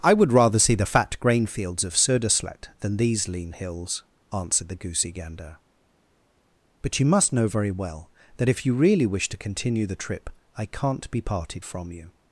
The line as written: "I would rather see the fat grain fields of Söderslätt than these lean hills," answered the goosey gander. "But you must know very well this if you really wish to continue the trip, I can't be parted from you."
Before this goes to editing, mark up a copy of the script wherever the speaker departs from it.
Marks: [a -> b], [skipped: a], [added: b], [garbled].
"I would rather see the fat grain fields of Söderslätt than these lean hills," answered the goosey gander. "But you must know very well [this -> that] if you really wish to continue the trip, I can't be parted from you."